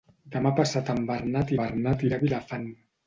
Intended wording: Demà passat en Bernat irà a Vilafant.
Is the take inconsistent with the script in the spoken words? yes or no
yes